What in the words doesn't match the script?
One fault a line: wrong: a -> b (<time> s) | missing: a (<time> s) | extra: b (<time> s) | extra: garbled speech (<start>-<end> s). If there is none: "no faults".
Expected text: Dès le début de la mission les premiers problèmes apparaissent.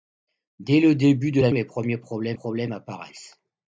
missing: mission (1.5 s)
extra: problèmes (2.3 s)